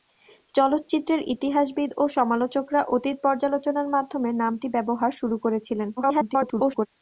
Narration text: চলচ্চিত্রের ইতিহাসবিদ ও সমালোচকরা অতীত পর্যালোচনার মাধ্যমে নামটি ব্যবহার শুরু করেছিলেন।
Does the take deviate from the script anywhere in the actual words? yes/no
yes